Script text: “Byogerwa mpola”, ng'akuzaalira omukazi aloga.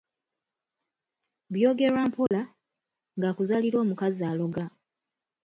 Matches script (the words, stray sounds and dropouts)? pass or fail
fail